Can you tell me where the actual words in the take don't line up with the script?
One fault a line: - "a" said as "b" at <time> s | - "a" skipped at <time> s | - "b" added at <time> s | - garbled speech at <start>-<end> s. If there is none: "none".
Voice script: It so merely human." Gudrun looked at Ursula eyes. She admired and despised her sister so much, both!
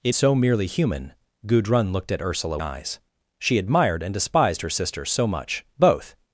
none